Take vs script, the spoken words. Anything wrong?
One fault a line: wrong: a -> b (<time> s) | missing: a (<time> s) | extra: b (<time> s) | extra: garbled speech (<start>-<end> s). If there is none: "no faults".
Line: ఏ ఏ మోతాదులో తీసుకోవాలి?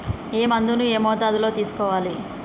extra: మందును (0.4 s)